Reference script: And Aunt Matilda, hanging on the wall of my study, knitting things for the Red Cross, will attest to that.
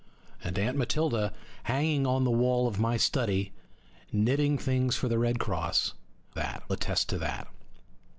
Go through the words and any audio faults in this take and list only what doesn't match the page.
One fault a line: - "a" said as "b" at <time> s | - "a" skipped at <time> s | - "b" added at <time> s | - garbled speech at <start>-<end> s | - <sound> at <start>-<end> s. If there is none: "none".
- "will" said as "that" at 6.3 s